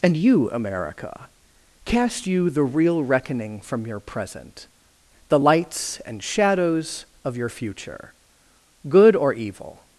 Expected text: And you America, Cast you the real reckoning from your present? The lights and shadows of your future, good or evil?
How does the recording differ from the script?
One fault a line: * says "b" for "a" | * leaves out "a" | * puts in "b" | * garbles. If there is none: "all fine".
all fine